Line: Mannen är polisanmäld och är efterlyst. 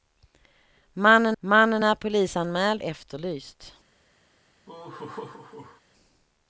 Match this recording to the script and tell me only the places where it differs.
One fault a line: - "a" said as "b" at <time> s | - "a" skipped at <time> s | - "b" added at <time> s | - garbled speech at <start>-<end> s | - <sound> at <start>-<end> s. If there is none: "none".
- "mannen" added at 1.4 s
- "och är" skipped at 2.8 s
- laugh at 4.7-5.8 s